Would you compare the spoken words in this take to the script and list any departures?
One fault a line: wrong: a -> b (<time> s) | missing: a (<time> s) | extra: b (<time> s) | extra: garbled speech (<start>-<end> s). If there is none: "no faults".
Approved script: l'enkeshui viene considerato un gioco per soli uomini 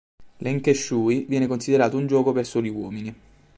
no faults